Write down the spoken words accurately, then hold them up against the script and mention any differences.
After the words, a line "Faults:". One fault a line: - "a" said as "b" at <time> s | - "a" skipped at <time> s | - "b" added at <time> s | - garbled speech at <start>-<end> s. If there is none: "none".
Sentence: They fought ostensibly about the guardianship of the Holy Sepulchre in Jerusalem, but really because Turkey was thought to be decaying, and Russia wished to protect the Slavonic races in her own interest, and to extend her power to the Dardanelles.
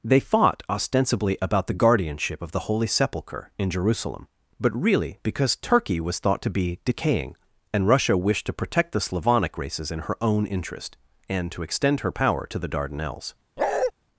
They fought ostensibly about the guardianship of the Holy Sepulchre in Jerusalem, but really because Turkey was thought to be decaying, and Russia wished to protect the Slavonic races in her own interest, and to extend her power to the Dardanelles.
Faults:
none